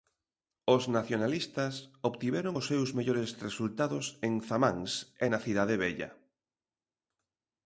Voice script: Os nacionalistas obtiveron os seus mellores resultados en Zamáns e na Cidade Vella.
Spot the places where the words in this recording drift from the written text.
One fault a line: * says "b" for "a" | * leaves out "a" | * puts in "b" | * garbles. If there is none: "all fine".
all fine